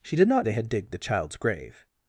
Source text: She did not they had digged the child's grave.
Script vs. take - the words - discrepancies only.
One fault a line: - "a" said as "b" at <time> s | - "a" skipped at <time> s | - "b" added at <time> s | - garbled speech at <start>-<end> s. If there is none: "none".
none